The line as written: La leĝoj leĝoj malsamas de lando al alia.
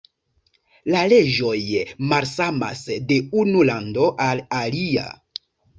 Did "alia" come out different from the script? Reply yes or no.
no